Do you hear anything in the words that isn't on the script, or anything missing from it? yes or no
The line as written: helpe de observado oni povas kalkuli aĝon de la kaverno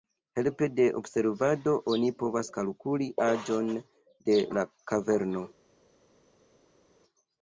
no